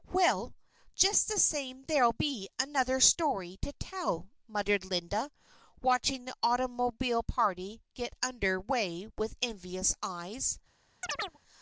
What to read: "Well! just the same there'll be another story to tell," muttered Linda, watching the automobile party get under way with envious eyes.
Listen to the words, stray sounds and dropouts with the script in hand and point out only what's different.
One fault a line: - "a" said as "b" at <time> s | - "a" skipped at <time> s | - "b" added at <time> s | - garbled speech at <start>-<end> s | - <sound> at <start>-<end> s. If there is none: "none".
- chirp at 11.0-11.4 s